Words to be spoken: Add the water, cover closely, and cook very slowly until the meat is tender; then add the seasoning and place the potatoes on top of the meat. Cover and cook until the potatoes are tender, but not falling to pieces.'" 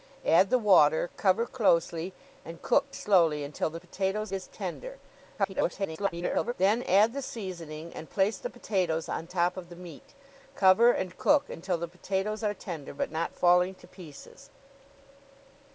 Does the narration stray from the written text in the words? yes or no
yes